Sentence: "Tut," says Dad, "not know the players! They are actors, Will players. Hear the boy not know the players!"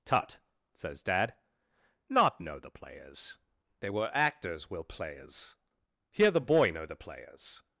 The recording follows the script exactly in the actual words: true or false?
false